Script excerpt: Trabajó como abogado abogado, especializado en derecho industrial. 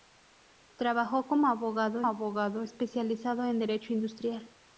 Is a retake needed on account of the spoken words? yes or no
no